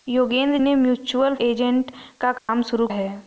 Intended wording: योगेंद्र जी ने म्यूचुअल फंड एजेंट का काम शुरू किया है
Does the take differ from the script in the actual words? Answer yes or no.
yes